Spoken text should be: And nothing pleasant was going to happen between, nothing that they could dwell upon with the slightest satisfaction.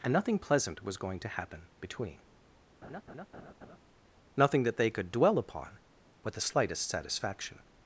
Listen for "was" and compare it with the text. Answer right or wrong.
right